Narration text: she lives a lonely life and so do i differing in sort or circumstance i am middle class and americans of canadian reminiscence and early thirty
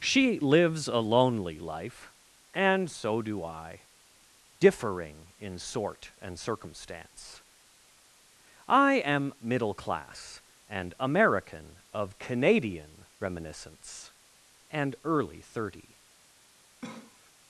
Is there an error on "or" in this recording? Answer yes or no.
yes